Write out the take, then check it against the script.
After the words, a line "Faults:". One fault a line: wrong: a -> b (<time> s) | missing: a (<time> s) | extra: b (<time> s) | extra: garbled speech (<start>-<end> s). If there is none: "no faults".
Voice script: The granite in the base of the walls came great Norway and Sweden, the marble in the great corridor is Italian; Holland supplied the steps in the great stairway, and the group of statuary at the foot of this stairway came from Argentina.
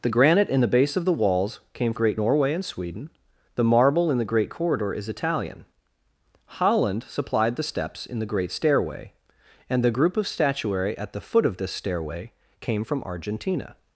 The granite in the base of the walls came great Norway and Sweden, the marble in the great corridor is Italian; Holland supplied the steps in the great stairway, and the group of statuary at the foot of this stairway came from Argentina.
Faults:
no faults